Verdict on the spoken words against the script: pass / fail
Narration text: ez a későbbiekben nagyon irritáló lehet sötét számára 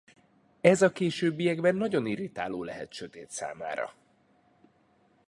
pass